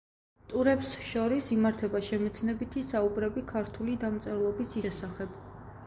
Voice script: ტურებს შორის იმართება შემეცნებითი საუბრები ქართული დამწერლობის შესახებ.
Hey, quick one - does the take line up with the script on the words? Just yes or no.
yes